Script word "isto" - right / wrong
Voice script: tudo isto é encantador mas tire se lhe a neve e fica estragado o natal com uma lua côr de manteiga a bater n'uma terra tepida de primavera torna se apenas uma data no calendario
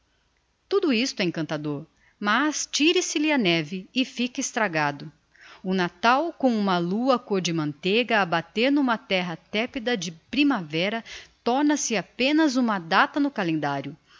right